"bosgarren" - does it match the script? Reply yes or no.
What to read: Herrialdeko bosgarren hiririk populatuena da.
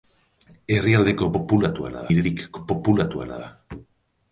no